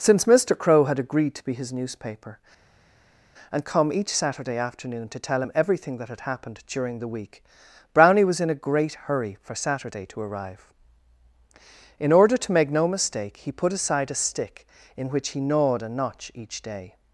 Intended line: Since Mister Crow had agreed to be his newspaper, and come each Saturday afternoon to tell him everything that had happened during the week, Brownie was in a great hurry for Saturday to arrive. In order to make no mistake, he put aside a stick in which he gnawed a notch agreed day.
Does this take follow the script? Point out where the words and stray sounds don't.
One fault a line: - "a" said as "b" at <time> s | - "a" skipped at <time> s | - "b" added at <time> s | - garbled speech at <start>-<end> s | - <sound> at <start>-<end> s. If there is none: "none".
- "agreed" said as "each" at 16.3 s